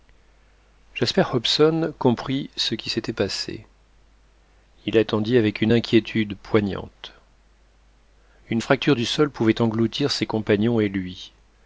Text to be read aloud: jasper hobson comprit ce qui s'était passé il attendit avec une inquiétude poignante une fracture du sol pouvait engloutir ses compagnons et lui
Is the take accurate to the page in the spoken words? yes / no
yes